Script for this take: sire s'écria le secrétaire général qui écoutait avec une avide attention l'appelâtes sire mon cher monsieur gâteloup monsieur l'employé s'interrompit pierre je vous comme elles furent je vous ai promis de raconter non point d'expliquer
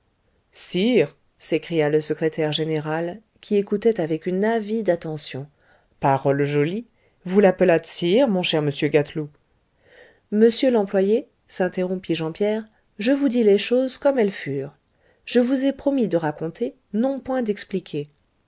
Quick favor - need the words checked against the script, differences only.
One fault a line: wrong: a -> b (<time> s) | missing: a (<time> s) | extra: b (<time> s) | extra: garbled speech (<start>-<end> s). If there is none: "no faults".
extra: parole jolie vous (6.0 s)
extra: jean (12.2 s)
extra: dis les choses (13.3 s)